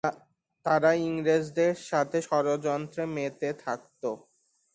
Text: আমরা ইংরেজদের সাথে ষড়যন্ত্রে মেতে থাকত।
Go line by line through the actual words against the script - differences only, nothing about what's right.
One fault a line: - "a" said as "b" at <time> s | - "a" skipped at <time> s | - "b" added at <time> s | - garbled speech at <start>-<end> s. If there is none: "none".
- "আমরা" said as "তারা" at 0.7 s